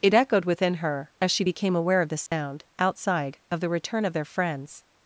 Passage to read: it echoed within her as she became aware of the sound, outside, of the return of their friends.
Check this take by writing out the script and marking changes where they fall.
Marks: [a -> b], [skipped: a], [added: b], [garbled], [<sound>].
it echoed within her as she became aware of the sound, [dropout] outside, of the return of their friends.